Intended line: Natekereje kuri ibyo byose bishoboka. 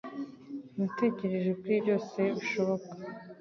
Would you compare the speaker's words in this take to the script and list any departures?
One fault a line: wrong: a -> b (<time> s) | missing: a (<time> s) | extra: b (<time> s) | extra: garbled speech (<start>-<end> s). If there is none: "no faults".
missing: ibyo (1.7 s)